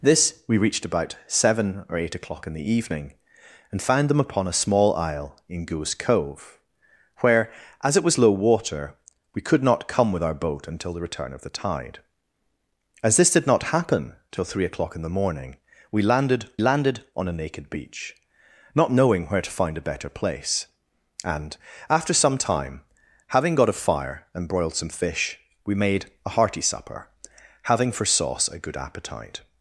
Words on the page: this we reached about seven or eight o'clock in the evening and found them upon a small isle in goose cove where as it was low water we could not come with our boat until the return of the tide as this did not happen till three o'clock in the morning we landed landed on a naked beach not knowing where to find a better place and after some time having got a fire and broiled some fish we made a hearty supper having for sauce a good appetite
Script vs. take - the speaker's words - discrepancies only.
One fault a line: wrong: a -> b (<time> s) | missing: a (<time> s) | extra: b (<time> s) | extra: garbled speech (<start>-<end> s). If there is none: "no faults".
no faults